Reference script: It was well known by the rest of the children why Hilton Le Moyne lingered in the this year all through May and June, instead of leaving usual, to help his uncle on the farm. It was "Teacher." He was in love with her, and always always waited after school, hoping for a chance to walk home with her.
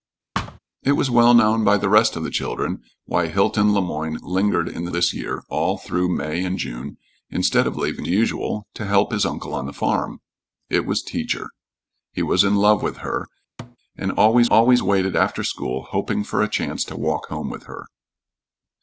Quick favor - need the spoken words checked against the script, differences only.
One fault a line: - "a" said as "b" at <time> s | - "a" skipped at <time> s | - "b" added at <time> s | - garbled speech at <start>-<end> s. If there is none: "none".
none